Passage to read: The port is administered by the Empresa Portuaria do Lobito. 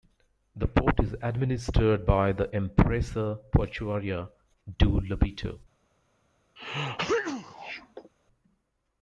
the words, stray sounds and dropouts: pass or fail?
fail